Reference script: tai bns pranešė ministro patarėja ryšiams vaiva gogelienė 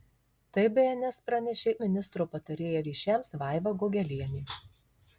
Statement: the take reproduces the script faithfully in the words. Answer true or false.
true